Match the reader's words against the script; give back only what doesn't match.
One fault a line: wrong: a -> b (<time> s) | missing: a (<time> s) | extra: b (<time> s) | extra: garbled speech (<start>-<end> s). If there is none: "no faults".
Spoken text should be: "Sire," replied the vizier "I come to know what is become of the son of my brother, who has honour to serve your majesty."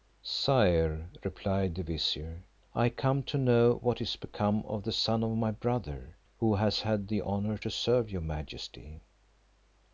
extra: had the (6.8 s)